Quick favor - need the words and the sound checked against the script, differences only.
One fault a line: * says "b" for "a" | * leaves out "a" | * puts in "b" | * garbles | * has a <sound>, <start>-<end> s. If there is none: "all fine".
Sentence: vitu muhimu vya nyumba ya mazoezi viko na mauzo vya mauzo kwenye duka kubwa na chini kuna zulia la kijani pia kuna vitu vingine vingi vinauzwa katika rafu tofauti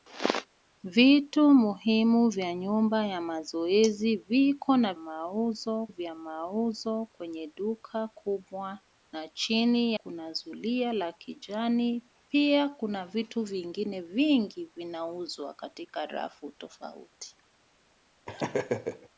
* has a laugh, 18.3-19.1 s